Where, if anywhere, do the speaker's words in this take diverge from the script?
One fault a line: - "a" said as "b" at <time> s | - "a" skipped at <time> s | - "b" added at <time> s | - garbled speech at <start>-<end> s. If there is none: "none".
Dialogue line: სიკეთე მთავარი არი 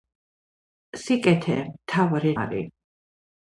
none